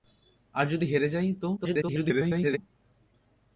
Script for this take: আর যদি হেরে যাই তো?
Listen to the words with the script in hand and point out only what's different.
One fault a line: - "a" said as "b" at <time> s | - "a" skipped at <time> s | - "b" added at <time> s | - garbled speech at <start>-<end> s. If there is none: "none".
- garbled speech at 1.6-2.6 s